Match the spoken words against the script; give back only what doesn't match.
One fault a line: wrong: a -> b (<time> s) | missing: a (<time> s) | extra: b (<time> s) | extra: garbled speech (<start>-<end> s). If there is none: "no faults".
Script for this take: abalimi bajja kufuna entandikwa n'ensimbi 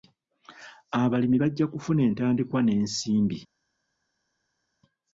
no faults